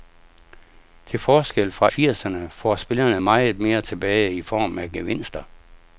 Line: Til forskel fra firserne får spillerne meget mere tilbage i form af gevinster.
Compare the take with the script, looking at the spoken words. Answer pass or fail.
pass